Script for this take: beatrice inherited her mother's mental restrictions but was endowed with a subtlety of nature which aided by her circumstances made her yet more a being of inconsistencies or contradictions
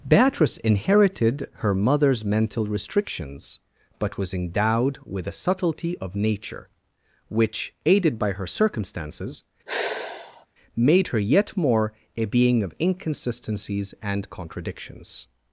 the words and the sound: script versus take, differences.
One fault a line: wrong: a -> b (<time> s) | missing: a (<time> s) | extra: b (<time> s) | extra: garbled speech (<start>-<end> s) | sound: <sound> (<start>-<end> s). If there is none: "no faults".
sound: sigh (9.7-10.5 s)
wrong: or -> and (14.0 s)